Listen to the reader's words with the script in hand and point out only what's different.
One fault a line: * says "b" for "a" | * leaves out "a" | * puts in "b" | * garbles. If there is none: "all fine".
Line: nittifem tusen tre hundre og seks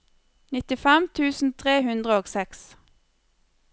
all fine